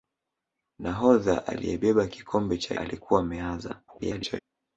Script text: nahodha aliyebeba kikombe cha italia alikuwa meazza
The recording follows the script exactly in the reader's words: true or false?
false